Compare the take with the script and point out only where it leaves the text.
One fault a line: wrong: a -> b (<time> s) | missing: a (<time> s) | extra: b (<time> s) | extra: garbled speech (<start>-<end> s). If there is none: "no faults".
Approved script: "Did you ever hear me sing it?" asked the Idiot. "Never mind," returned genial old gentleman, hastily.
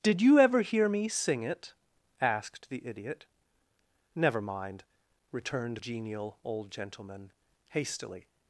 no faults